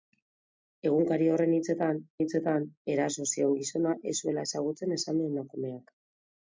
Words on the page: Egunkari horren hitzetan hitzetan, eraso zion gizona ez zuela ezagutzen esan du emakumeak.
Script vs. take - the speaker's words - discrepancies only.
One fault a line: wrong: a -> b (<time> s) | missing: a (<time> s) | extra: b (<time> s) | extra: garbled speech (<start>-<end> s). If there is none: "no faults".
no faults